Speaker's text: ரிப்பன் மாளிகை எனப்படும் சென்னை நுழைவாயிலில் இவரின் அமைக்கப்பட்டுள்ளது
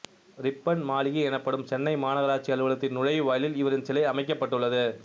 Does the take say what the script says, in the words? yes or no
no